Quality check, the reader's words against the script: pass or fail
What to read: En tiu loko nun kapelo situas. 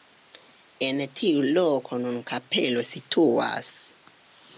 pass